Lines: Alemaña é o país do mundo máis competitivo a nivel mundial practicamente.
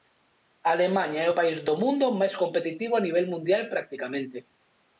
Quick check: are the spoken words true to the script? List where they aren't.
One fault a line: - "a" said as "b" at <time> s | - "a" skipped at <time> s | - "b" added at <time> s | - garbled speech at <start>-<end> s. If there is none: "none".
none